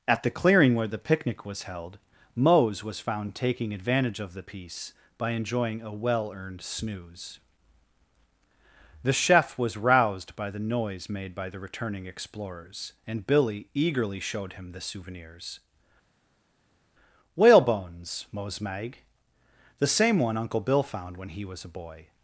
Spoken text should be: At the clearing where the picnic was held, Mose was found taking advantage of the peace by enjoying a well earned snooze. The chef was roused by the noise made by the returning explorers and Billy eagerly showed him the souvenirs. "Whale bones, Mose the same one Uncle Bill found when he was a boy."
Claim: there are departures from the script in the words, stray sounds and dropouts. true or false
true